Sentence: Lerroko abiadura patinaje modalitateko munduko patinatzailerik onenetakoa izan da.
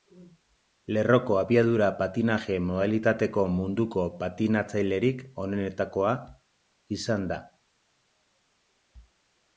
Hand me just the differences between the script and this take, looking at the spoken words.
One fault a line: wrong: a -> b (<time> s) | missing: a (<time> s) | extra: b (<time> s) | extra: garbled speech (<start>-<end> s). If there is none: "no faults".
no faults